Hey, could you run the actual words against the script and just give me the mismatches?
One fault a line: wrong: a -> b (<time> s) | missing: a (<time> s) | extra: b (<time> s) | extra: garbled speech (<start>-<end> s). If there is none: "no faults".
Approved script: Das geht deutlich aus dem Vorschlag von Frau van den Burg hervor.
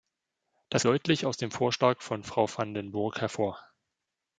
missing: geht (0.8 s)